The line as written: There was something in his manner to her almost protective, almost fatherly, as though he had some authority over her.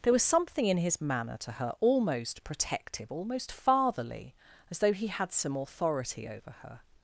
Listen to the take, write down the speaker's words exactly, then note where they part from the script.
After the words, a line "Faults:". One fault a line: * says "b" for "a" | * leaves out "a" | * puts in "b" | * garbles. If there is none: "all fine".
There was something in his manner to her almost protective, almost fatherly, as though he had some authority over her.
Faults:
all fine